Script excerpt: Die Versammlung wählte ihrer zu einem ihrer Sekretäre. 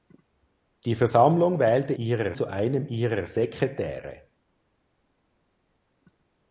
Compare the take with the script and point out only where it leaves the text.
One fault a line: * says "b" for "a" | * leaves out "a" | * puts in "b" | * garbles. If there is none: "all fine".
all fine